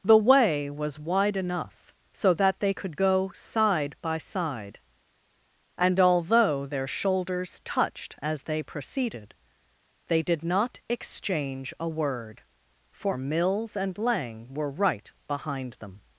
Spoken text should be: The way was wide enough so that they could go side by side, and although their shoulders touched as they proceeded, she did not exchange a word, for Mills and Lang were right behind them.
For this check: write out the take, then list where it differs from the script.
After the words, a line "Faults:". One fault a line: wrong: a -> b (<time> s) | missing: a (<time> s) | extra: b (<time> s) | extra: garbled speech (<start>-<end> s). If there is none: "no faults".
The way was wide enough so that they could go side by side, and although their shoulders touched as they proceeded, they did not exchange a word, for Mills and Lang were right behind them.
Faults:
wrong: she -> they (10.1 s)